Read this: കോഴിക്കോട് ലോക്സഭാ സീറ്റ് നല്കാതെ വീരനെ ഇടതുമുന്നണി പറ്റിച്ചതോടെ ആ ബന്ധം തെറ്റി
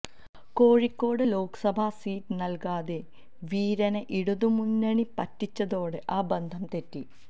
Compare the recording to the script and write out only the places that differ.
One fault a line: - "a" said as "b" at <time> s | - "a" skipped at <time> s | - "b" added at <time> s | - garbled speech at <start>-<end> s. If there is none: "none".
none